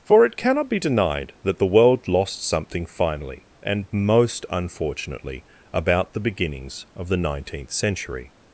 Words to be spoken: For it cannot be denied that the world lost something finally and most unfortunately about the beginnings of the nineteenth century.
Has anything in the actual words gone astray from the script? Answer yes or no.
no